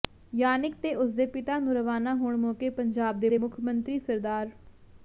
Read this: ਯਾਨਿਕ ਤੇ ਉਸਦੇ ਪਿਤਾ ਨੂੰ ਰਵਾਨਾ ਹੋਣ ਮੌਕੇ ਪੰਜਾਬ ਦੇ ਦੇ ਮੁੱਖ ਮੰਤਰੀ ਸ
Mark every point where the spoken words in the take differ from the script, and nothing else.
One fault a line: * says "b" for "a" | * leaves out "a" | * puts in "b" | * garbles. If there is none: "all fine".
all fine